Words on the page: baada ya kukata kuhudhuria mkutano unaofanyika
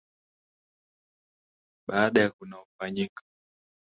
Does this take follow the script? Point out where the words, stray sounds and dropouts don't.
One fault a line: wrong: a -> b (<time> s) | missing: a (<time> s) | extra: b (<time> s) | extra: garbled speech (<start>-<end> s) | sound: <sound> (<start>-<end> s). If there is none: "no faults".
missing: kukata kuhudhuria mkutano (2.3 s)